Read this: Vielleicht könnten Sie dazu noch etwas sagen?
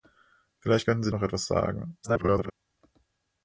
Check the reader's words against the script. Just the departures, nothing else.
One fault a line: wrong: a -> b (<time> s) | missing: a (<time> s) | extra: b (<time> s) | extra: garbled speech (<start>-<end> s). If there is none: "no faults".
missing: dazu (1.1 s)
extra: garbled speech (2.0-2.5 s)